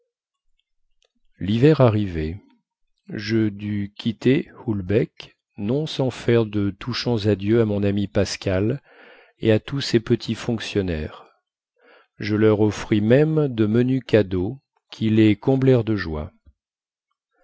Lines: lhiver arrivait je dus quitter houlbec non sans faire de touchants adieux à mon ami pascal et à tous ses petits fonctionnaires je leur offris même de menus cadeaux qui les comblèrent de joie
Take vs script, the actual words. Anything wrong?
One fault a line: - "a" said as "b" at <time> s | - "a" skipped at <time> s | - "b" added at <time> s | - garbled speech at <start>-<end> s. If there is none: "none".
none